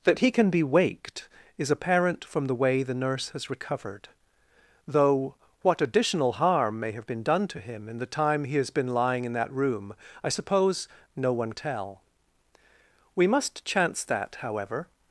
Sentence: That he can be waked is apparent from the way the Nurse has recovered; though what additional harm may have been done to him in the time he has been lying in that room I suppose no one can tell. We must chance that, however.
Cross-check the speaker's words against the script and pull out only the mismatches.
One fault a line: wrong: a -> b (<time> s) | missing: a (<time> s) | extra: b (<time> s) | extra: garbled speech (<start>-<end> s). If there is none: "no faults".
missing: can (11.5 s)